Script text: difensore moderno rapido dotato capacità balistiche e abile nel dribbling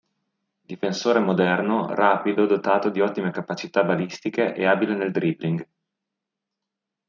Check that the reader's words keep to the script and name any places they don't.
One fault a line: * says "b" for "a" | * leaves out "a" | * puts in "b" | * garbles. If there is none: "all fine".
* puts in "di ottime"